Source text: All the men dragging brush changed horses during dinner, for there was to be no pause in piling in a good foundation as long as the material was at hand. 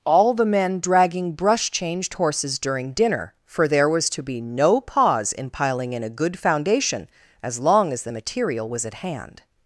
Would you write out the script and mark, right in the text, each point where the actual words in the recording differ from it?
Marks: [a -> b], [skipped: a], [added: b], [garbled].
All the men dragging brush changed horses during dinner, for there was to be no pause in piling in a good foundation as long as the material was at hand.